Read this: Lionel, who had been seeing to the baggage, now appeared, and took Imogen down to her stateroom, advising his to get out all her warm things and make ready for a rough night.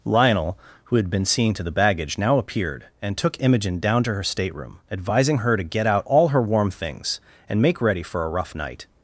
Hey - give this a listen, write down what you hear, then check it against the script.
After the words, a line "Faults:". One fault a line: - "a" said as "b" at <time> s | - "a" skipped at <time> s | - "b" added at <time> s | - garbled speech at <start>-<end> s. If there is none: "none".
Lionel, who had been seeing to the baggage, now appeared, and took Imogen down to her stateroom, advising her to get out all her warm things and make ready for a rough night.
Faults:
- "his" said as "her" at 5.4 s